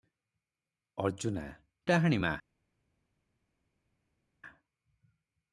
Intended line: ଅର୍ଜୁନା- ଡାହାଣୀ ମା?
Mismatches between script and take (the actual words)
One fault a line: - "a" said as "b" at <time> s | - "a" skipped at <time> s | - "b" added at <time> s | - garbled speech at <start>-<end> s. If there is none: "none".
none